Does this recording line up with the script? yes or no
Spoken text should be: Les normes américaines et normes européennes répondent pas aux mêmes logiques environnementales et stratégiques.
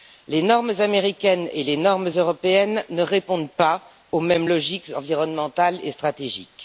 no